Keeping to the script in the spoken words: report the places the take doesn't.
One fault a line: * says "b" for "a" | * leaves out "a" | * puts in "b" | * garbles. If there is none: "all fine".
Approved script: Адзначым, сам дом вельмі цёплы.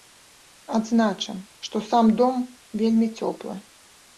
* puts in "што"